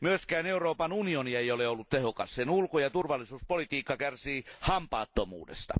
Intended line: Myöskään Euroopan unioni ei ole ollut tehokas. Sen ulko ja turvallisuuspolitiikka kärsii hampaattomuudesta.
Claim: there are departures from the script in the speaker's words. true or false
false